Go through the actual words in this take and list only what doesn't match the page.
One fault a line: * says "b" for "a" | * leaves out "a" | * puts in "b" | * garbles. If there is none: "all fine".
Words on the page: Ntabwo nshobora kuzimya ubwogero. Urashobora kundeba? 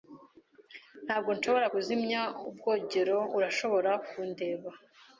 all fine